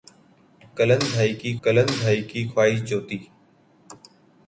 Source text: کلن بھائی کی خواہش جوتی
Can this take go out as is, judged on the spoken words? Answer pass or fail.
fail